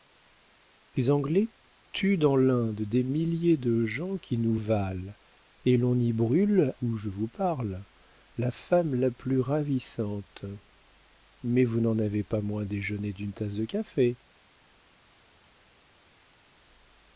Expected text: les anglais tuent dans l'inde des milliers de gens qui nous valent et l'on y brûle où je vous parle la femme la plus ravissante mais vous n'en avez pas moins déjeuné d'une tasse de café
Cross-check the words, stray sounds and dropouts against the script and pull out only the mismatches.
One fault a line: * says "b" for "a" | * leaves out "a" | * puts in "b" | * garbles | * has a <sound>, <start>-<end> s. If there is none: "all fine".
all fine